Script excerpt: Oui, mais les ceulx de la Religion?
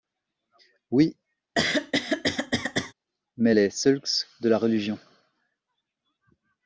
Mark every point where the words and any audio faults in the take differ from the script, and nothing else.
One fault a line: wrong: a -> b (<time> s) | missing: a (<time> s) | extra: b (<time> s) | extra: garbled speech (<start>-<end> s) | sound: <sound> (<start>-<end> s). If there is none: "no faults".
sound: throat clearing (1.6-2.9 s)